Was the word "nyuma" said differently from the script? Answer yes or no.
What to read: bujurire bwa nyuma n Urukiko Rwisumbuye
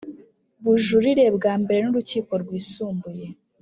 yes